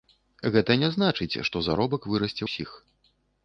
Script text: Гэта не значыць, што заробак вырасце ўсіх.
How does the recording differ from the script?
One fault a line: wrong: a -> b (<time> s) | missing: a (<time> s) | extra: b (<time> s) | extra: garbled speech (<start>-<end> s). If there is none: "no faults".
no faults